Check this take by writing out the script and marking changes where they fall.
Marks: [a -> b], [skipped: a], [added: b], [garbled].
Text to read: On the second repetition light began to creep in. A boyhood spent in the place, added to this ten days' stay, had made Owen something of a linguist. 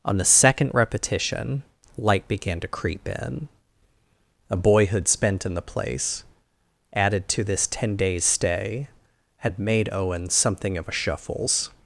On the second repetition light began to creep in. A boyhood spent in the place, added to this ten days' stay, had made Owen something of a [linguist. -> shuffles]